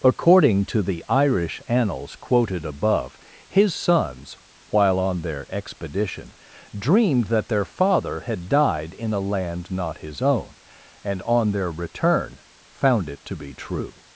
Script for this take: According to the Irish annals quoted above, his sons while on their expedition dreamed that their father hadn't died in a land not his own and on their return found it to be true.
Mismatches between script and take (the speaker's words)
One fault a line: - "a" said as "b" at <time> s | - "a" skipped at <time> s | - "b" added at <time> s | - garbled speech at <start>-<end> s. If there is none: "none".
- "hadn't" said as "had" at 8.2 s